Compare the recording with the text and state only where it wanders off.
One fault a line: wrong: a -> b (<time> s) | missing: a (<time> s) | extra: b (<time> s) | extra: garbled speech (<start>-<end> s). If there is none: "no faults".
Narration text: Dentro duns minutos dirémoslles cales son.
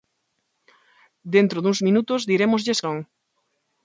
missing: cales (2.8 s)